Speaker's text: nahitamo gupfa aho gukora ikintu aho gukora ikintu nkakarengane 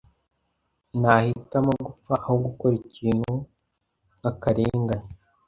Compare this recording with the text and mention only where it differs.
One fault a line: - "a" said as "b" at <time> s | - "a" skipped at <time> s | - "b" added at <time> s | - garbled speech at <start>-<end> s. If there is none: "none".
- "aho gukora ikintu" skipped at 3.3 s